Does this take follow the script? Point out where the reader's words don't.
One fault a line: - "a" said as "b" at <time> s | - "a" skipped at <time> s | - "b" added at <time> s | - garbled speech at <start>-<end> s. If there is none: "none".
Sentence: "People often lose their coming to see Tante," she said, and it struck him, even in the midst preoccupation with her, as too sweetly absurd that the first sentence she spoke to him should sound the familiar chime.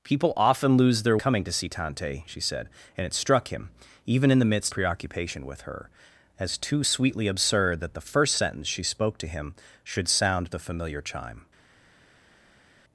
none